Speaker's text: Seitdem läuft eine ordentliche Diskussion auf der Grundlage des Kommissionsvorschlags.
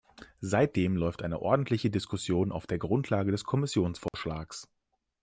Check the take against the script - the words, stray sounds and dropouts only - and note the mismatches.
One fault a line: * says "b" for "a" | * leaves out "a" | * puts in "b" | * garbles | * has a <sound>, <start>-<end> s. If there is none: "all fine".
* has a dropout, 4.1-4.1 s